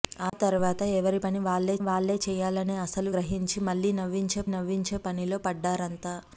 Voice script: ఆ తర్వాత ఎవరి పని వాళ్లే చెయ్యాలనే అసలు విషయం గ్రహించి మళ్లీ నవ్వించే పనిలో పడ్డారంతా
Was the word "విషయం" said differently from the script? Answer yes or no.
yes